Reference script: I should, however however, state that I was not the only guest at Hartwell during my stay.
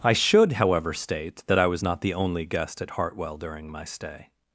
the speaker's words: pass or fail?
fail